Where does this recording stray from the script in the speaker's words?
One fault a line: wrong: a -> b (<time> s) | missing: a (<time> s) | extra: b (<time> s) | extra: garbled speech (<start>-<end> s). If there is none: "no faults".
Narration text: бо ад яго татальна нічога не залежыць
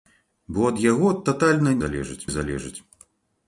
wrong: нічога -> залежыць (1.8 s)